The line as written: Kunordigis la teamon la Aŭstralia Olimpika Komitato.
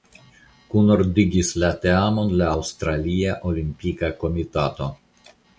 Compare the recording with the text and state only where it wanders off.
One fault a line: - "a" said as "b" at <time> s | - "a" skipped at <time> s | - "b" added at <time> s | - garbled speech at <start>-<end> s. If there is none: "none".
none